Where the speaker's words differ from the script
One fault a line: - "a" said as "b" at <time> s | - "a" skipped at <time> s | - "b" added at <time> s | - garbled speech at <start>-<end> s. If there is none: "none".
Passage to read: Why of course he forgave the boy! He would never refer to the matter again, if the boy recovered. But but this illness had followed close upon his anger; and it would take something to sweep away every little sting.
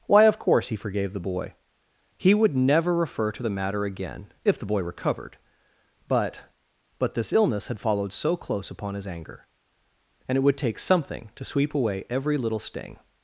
- "so" added at 8.1 s